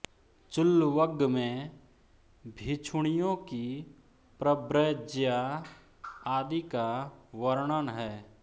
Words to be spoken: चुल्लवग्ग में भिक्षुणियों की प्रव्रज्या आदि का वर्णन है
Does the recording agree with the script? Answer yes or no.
yes